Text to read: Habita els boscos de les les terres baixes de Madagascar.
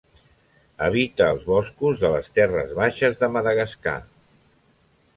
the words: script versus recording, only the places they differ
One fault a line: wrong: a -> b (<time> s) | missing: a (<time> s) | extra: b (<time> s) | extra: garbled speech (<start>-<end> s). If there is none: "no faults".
missing: les (2.3 s)